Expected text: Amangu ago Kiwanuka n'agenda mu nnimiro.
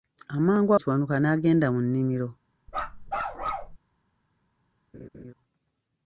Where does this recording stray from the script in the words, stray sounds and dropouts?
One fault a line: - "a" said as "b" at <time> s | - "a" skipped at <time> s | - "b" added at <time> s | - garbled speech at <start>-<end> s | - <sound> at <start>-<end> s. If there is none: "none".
- "ago" skipped at 0.7 s
- bark at 2.7-3.8 s
- laugh at 4.9-5.3 s